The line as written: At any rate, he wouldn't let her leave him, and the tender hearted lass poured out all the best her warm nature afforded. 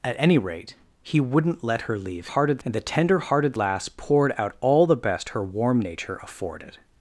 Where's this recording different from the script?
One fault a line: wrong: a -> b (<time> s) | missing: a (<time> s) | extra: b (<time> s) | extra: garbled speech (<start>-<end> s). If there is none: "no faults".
wrong: him -> hearted (2.2 s)